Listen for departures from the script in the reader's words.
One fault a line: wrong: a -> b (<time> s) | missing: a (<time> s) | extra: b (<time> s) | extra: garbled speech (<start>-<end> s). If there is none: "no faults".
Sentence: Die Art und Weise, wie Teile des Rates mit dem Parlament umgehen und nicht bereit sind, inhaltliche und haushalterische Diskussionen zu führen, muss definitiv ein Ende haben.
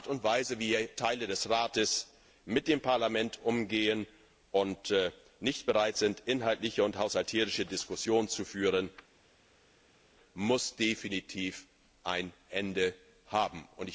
no faults